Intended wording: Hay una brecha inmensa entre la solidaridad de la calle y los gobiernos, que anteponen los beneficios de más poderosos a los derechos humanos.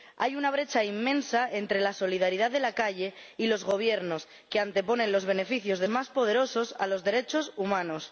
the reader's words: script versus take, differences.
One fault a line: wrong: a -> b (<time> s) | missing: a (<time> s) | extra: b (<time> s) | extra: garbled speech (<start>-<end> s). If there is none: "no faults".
no faults